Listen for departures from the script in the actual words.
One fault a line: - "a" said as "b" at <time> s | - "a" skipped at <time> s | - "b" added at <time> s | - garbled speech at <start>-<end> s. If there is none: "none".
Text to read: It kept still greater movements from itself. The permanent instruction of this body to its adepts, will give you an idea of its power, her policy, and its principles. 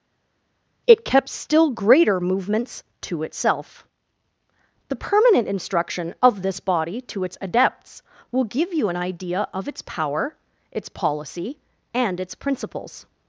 - "from" said as "to" at 3.0 s
- "her" said as "its" at 10.7 s